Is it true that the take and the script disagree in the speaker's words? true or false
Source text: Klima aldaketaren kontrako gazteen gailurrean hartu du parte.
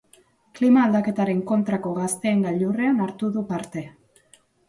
false